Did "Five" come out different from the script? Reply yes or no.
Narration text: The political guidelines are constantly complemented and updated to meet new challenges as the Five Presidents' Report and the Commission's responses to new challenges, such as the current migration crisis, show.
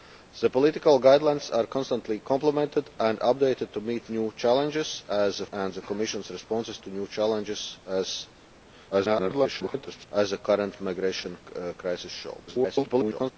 yes